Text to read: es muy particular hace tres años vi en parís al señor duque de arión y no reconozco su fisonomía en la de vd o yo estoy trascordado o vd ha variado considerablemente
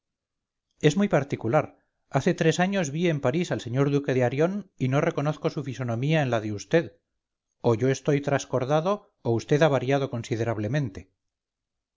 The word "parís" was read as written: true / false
true